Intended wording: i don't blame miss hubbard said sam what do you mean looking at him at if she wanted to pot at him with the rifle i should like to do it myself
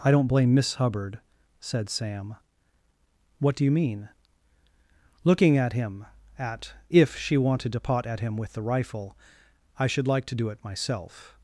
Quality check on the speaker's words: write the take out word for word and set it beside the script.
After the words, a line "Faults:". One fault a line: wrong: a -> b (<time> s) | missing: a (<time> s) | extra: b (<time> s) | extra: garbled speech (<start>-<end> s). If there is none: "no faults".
i don't blame miss hubbard said sam what do you mean looking at him at if she wanted to pot at him with the rifle i should like to do it myself
Faults:
no faults